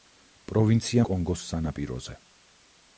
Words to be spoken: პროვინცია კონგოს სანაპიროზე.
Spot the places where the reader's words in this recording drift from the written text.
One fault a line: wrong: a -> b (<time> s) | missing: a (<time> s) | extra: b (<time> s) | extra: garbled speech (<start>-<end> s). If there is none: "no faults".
no faults